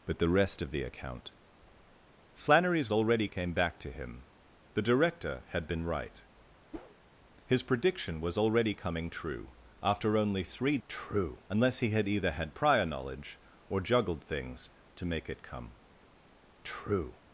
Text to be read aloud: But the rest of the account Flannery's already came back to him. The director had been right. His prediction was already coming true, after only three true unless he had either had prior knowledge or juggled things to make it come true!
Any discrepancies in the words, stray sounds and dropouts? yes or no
yes